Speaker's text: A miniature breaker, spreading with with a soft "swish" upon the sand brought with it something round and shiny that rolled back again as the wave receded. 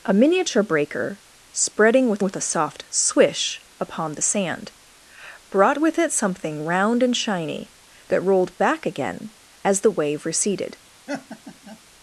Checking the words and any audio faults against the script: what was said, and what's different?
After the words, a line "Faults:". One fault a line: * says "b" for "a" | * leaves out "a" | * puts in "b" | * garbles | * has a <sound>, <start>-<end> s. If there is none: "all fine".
A miniature breaker, spreading with with a soft "swish" upon the sand brought with it something round and shiny that rolled back again as the wave receded.
Faults:
* has a laugh, 11.1-11.8 s